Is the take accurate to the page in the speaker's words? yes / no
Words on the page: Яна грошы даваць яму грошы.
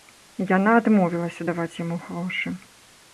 no